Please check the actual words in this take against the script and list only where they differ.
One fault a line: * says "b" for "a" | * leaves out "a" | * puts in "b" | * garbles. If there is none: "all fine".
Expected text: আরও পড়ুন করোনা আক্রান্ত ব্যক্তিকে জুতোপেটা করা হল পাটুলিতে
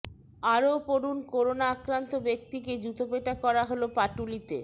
all fine